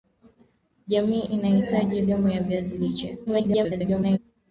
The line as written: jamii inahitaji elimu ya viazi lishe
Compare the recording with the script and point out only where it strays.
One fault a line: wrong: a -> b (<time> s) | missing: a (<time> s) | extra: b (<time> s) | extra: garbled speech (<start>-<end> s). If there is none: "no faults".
extra: garbled speech (3.3-4.2 s)